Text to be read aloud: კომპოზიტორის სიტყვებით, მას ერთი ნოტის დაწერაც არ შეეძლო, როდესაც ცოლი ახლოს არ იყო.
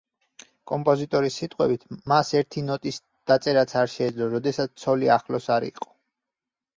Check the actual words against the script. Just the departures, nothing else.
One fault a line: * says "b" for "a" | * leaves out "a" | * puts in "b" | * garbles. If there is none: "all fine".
all fine